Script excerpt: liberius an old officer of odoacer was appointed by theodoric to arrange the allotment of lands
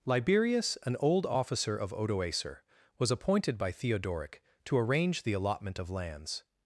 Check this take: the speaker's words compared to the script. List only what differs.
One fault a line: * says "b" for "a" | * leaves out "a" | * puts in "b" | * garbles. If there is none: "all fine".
all fine